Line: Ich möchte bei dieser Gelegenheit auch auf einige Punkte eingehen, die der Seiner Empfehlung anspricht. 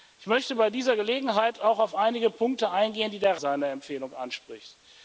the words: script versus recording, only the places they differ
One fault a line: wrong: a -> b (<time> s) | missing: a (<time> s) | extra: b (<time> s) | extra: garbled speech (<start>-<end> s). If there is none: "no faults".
no faults